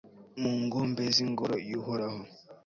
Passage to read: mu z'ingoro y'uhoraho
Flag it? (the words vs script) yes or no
yes